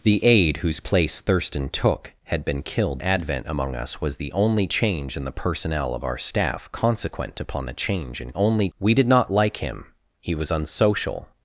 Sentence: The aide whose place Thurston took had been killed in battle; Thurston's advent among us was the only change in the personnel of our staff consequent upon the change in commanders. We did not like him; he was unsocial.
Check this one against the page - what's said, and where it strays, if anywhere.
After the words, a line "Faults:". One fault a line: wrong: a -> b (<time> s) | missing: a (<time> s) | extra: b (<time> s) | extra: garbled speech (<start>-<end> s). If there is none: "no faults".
The aide whose place Thurston took had been killed advent among us was the only change in the personnel of our staff consequent upon the change in only. We did not like him; he was unsocial.
Faults:
missing: in battle Thurston's (3.0 s)
wrong: commanders -> only (8.3 s)